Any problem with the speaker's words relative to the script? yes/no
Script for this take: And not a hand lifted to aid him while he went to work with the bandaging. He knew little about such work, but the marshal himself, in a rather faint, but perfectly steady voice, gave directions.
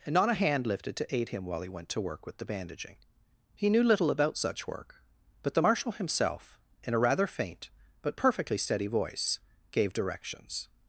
no